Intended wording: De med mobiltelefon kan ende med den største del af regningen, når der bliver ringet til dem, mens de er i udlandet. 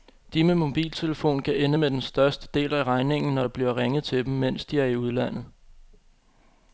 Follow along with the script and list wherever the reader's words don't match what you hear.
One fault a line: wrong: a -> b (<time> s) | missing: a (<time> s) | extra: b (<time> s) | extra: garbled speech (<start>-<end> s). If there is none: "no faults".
no faults